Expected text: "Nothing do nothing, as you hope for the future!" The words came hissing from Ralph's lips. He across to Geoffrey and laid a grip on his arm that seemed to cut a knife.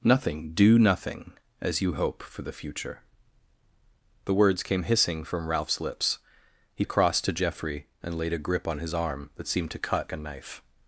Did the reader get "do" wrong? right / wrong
right